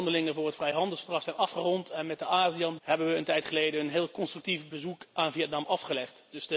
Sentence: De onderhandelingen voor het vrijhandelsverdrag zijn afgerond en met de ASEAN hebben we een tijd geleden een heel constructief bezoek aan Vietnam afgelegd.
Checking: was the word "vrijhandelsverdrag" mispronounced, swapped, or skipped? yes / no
no